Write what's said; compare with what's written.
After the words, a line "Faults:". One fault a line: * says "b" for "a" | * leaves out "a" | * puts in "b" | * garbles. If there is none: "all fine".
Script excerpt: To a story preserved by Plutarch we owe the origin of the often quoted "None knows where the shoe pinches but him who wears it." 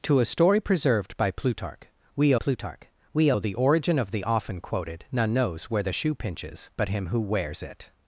To a story preserved by Plutarch we Plutarch we owe the origin of the often quoted "None knows where the shoe pinches but him who wears it."
Faults:
* puts in "Plutarch we"